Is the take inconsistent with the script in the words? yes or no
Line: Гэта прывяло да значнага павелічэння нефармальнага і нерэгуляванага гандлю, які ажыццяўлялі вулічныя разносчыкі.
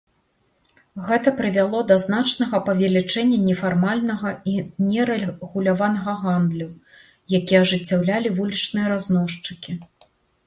no